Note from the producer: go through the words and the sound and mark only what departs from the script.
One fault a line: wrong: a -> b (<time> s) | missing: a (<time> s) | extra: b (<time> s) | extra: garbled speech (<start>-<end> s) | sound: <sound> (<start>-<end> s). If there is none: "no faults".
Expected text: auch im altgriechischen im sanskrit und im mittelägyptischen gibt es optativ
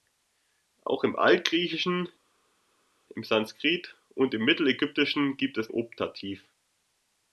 no faults